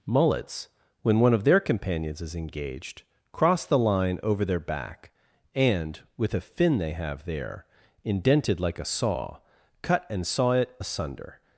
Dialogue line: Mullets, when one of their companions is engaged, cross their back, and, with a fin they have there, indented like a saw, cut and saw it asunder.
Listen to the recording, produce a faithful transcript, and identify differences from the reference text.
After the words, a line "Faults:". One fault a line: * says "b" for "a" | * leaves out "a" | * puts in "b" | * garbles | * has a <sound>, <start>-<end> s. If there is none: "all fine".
Mullets, when one of their companions is engaged, cross the line over their back, and, with a fin they have there, indented like a saw, cut and saw it asunder.
Faults:
* puts in "the line over"